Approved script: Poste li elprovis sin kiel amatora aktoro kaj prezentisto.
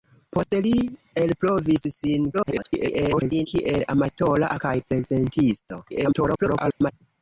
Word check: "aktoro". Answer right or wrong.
wrong